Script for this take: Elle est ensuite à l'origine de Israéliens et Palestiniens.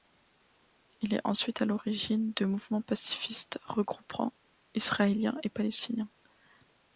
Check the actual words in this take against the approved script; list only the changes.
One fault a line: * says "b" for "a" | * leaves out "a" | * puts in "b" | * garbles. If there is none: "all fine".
* says "Il" for "Elle"
* puts in "mouvements pacifistes regroupant"